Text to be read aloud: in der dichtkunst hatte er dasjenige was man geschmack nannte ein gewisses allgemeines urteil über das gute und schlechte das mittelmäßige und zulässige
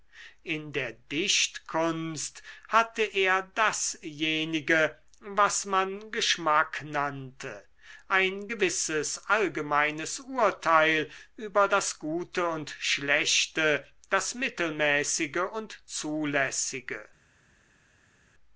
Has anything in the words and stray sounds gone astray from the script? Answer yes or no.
no